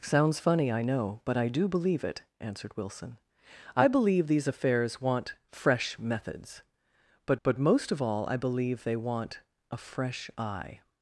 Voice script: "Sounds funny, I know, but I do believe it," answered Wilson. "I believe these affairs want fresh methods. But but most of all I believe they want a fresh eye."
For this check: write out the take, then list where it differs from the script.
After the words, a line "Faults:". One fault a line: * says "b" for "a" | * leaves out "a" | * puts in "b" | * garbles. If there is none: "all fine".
"Sounds funny, I know, but I do believe it," answered Wilson. "I believe these affairs want fresh methods. But but most of all I believe they want a fresh eye."
Faults:
all fine